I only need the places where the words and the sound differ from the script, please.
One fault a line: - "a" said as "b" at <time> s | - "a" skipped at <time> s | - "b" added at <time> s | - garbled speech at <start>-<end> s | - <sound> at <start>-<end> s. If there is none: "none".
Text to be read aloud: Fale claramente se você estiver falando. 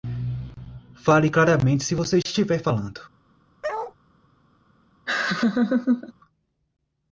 - bark at 3.6-3.9 s
- laugh at 5.1-6.1 s